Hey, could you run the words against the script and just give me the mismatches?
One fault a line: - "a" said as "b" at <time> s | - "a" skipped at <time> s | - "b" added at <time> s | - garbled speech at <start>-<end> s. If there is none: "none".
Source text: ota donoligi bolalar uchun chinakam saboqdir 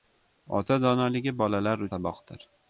- "uchun chinakam" skipped at 1.9 s